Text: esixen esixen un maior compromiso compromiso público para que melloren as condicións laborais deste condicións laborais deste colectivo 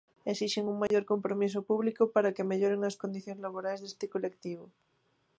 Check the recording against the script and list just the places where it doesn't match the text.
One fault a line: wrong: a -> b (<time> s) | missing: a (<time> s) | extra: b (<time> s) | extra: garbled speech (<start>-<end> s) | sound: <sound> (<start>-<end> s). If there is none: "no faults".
missing: esixen (0.7 s)
sound: dropout (0.9-0.9 s)
missing: compromiso (1.6 s)
missing: condicións laborais deste (4.0 s)